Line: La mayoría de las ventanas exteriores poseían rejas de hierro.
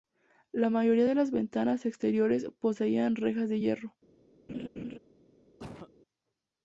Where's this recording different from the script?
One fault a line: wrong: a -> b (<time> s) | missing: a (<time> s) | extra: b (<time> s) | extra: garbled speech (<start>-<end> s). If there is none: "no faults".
no faults